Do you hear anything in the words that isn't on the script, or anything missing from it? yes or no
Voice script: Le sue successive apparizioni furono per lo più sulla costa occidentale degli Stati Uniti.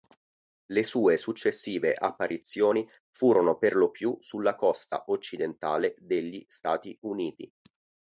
no